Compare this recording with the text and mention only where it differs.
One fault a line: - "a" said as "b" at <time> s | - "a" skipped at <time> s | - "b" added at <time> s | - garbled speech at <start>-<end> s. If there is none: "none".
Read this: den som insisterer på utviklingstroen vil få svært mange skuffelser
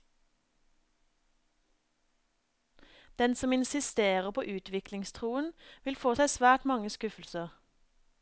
- "seg" added at 6.1 s